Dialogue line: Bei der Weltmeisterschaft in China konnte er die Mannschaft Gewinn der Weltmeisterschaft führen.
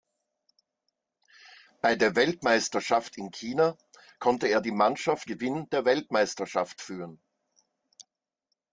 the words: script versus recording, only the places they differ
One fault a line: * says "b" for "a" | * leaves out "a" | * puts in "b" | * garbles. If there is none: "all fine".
all fine